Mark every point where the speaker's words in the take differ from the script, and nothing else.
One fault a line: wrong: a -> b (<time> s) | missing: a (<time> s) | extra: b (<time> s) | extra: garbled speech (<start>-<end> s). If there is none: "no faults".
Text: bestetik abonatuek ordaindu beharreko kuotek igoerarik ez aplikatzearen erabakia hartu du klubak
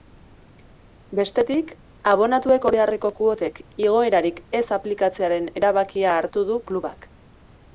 missing: ordaindu (2.6 s)